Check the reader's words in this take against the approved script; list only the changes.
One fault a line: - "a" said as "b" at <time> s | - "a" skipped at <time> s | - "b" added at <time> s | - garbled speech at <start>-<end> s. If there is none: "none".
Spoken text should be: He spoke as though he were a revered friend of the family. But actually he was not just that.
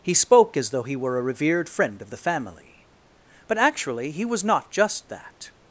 none